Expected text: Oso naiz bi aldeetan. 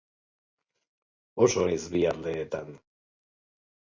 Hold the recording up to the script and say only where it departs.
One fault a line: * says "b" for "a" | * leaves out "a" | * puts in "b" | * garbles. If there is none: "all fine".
all fine